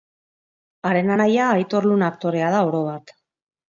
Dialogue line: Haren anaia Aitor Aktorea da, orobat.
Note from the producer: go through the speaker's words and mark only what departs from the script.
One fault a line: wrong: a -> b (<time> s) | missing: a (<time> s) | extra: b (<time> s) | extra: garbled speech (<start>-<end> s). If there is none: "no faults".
extra: Luna (1.9 s)